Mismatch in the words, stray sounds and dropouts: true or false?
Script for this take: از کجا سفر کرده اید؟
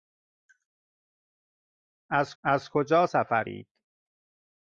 true